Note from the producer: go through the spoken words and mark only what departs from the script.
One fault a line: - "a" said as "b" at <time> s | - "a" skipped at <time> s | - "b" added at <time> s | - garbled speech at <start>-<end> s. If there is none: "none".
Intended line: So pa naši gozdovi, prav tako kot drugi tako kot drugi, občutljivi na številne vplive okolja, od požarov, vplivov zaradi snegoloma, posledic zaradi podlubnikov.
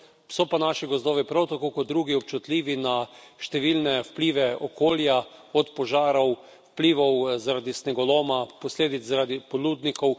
- "tako kot drugi" skipped at 2.1 s